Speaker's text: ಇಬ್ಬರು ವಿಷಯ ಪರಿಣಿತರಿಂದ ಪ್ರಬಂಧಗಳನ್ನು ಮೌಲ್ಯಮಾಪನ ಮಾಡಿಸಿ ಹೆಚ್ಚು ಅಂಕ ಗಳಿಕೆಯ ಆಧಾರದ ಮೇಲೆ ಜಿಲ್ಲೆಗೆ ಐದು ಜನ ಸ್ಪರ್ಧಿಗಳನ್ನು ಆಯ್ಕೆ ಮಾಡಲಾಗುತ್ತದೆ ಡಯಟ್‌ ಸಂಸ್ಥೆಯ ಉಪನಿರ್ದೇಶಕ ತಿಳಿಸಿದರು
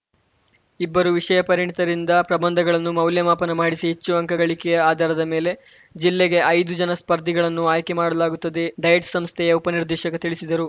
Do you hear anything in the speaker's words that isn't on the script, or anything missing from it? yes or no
no